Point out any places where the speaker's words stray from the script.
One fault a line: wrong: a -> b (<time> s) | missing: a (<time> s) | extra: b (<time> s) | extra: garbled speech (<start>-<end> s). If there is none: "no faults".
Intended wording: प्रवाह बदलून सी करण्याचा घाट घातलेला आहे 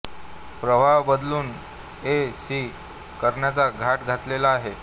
extra: ए (2.1 s)